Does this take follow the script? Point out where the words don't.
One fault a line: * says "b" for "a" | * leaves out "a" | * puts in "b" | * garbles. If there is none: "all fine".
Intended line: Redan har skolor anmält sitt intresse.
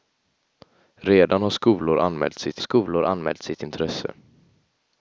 * puts in "skolor anmält sitt"